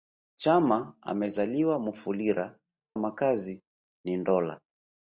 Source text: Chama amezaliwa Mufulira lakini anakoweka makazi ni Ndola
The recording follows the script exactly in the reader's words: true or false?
false